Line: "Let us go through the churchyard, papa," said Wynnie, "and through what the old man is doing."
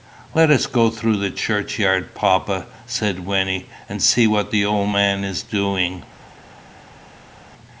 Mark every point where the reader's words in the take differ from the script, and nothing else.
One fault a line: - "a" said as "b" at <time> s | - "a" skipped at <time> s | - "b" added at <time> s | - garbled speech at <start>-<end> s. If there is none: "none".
- "through" said as "see" at 4.0 s